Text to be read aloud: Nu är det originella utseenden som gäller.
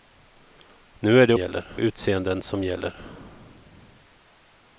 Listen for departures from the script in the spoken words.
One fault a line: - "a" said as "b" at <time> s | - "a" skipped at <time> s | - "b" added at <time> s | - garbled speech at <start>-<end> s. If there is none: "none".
- "originella" said as "gäller" at 1.3 s